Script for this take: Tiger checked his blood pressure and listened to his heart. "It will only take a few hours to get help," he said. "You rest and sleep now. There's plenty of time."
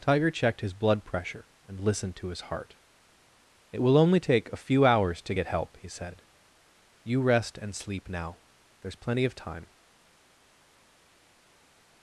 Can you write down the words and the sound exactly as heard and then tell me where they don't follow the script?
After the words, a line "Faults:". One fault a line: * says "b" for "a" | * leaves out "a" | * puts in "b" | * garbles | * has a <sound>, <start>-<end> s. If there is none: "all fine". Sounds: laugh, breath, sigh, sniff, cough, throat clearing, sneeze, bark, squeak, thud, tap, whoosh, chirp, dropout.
Tiger checked his blood pressure and listened to his heart. "It will only take a few hours to get help," he said. "You rest and sleep now. There's plenty of time."
Faults:
all fine